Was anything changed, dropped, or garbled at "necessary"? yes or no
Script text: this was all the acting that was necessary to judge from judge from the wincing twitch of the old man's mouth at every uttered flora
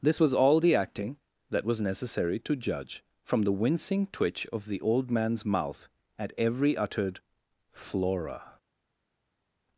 no